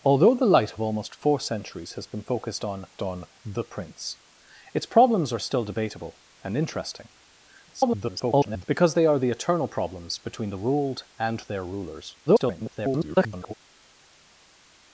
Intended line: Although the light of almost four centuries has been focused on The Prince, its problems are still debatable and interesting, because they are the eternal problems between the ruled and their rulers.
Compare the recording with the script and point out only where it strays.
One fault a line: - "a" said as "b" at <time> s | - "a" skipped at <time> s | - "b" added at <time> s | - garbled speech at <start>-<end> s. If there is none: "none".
- "on" added at 3.0 s
- garbled speech at 7.7-8.6 s
- garbled speech at 12.3-13.5 s